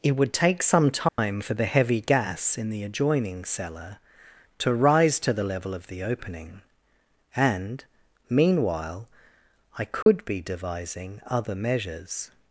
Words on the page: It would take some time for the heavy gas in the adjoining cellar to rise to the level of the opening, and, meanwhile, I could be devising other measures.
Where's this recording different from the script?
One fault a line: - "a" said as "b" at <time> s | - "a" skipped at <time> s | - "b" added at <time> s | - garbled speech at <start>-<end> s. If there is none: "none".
none